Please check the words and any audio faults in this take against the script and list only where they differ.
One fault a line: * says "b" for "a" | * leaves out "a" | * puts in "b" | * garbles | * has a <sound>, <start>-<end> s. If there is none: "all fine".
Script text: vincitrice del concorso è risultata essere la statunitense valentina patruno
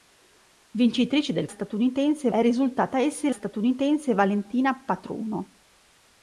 * says "statunitense" for "concorso"
* leaves out "la"